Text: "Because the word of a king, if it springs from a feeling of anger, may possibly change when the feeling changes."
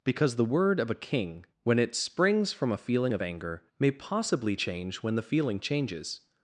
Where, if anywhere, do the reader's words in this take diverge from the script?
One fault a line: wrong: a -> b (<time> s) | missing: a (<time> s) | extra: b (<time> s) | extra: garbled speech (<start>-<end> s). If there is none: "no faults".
wrong: if -> when (1.6 s)